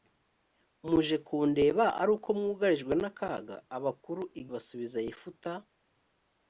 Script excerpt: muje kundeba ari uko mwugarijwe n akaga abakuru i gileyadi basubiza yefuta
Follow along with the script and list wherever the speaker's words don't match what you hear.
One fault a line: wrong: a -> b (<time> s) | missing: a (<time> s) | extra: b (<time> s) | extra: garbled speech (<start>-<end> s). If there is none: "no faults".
missing: gileyadi (4.4 s)